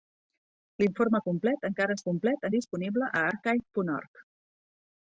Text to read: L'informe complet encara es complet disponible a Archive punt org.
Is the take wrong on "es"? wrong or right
right